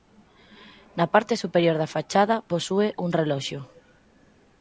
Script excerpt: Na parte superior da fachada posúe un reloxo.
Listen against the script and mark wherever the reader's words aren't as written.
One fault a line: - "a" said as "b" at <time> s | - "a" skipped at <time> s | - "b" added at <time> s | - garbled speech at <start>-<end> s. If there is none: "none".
none